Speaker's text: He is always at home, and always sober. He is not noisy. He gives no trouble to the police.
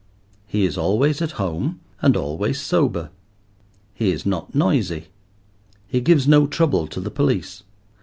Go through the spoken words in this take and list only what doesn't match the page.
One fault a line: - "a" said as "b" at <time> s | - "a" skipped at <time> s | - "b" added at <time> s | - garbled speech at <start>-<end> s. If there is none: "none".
none